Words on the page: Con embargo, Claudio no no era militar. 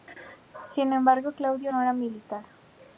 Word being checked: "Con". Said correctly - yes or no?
no